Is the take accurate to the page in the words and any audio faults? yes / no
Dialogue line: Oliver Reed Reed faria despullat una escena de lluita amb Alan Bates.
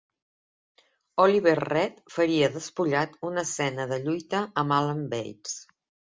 no